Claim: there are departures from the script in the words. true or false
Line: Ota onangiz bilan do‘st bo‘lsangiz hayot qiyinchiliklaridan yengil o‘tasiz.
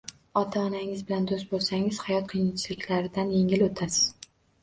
false